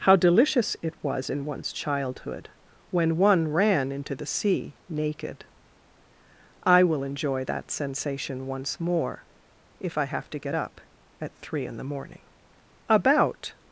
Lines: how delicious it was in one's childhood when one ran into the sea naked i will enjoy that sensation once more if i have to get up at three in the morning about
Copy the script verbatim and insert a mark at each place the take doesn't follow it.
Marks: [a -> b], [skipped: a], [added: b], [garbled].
how delicious it was in one's childhood when one ran into the sea naked i will enjoy that sensation once more if i have to get up at three in the morning about